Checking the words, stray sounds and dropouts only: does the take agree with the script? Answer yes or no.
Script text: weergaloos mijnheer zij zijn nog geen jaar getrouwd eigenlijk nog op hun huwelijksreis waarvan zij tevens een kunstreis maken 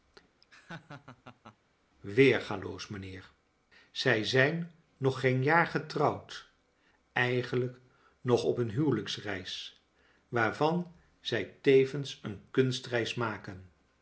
no